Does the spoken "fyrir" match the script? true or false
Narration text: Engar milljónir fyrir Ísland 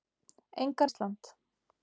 false